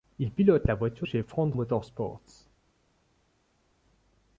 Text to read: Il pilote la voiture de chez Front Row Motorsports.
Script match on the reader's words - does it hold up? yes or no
no